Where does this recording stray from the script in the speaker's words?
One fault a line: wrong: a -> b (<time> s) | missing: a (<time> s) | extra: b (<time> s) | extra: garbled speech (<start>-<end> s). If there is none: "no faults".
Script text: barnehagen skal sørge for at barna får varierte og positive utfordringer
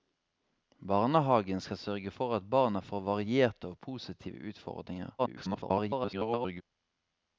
extra: garbled speech (5.2-6.6 s)